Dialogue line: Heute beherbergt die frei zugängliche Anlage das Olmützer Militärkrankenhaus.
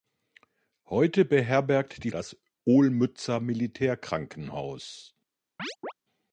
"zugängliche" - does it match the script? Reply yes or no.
no